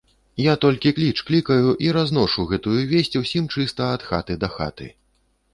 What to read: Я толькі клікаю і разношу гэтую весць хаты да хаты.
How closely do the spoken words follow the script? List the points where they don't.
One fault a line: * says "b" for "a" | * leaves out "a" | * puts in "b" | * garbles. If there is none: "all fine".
* puts in "кліч"
* puts in "усім чыста ад"